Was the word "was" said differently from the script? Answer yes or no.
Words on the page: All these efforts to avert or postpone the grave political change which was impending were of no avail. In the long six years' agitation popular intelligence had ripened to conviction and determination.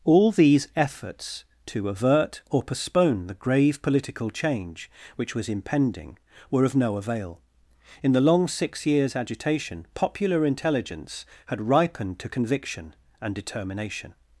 no